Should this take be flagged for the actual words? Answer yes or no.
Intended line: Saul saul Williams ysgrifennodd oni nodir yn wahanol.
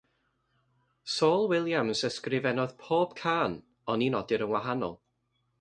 yes